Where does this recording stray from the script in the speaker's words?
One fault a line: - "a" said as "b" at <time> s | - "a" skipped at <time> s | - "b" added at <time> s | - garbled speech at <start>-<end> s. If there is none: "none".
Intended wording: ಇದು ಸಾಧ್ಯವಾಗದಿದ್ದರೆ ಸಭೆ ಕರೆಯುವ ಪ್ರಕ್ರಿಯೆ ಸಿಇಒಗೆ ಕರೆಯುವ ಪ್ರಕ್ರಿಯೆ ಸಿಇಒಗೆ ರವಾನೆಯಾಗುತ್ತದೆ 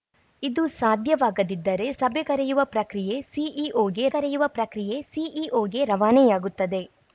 none